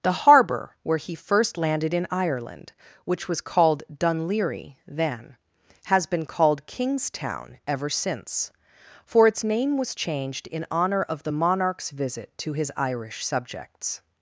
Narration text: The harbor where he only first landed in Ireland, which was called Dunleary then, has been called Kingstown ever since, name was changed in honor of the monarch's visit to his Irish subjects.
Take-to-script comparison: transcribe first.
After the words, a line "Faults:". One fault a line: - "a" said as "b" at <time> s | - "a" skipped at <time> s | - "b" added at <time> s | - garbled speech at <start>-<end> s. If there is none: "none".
The harbor where he first landed in Ireland, which was called Dunleary then, has been called Kingstown ever since, for its name was changed in honor of the monarch's visit to his Irish subjects.
Faults:
- "only" skipped at 1.1 s
- "for its" added at 9.0 s